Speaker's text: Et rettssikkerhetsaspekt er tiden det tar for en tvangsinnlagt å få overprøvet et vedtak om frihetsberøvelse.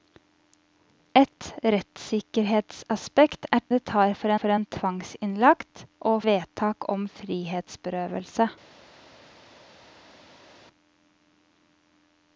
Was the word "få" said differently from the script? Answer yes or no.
yes